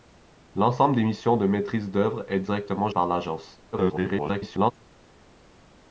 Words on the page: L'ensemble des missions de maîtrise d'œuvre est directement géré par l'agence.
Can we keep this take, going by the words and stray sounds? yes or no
no